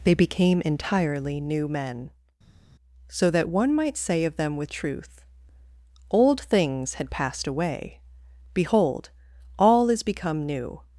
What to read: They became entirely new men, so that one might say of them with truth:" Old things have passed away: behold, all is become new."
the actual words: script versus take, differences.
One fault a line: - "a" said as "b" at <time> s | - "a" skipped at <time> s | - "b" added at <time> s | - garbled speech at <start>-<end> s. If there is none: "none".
- "have" said as "had" at 6.9 s